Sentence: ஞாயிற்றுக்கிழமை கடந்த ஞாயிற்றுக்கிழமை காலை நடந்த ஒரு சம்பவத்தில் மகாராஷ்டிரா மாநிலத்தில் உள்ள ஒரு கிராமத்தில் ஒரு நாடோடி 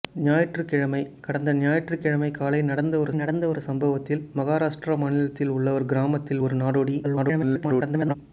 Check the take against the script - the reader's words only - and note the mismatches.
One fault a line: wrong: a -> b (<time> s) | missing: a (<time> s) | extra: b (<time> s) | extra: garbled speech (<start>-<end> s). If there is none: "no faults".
extra: நடந்த ஒரு (3.1 s)
extra: garbled speech (7.0-8.1 s)